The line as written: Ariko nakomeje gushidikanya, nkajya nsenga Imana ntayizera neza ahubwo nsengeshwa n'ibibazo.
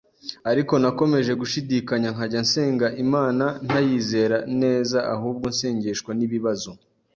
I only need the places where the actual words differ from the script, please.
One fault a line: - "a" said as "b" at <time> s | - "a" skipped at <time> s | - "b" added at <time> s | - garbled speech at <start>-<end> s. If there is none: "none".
none